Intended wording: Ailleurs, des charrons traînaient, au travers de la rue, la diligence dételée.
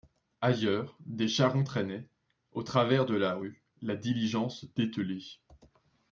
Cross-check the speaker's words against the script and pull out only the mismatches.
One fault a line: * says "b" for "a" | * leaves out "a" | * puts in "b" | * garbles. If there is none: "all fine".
all fine